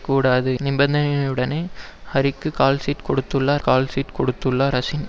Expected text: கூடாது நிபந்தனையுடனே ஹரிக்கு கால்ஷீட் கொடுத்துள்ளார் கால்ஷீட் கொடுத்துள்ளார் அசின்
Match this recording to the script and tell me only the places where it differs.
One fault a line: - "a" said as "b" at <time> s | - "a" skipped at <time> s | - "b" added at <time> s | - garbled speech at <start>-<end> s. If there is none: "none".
none